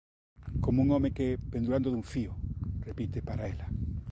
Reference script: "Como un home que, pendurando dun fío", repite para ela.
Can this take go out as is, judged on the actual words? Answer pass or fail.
pass